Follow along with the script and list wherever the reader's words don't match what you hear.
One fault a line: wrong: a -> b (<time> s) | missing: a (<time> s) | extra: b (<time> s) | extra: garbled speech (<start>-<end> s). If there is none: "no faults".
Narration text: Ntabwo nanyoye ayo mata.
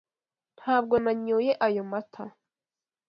no faults